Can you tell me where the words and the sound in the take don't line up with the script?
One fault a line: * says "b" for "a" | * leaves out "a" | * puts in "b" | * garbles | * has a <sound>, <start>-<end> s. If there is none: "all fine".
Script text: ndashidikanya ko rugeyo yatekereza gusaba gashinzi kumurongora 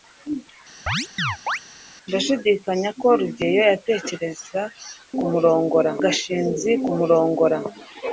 * has a chirp, 0.9-1.6 s
* says "kumurongora" for "gusaba"